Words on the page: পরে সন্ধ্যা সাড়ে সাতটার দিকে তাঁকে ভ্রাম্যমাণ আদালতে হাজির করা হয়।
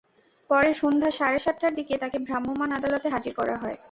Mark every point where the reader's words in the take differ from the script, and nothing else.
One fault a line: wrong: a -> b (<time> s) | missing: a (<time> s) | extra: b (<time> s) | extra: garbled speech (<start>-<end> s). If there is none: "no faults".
no faults